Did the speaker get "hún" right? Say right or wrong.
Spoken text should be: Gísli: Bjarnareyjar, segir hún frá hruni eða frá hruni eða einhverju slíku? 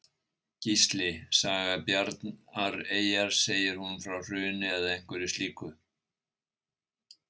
right